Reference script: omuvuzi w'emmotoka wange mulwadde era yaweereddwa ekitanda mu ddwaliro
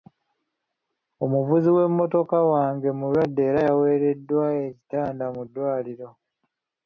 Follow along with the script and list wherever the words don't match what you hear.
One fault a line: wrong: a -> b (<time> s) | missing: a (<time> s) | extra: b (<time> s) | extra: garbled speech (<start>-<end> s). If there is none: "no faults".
no faults